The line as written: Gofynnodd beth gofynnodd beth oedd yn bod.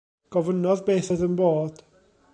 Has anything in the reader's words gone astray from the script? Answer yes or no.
yes